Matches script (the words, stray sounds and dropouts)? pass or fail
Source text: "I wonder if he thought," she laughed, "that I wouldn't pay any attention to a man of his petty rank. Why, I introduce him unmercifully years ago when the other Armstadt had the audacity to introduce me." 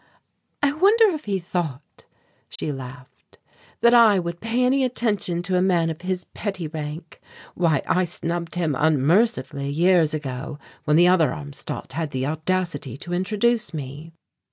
fail